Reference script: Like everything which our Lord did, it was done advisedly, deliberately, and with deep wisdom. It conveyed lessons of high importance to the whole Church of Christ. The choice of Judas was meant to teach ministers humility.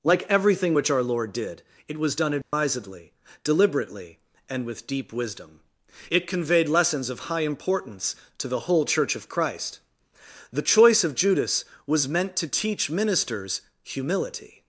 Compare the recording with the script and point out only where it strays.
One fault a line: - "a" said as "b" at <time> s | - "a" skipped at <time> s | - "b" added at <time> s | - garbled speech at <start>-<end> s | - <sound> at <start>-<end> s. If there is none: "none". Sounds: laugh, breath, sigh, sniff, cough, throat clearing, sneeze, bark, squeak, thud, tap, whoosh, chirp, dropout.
- dropout at 2.4-2.5 s